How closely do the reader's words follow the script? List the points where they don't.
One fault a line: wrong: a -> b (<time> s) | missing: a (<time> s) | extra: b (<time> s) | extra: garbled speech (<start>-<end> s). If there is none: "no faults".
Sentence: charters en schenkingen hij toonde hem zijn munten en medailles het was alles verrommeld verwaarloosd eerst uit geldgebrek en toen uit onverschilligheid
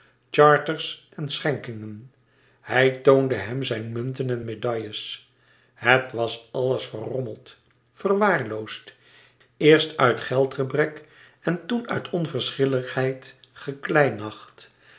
no faults